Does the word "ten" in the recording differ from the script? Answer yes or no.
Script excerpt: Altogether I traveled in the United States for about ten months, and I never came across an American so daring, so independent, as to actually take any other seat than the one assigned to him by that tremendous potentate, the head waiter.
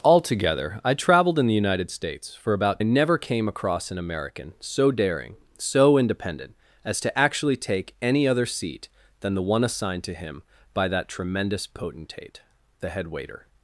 yes